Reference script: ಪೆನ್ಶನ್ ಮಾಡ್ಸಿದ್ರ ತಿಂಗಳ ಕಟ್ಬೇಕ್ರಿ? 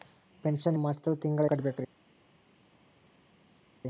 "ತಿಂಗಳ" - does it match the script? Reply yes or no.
yes